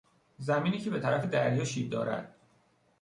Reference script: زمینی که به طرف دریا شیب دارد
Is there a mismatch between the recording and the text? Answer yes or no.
no